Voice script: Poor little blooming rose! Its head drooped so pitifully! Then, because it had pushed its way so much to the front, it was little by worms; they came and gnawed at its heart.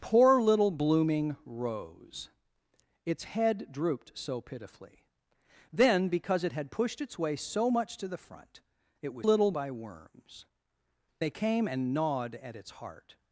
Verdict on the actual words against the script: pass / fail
pass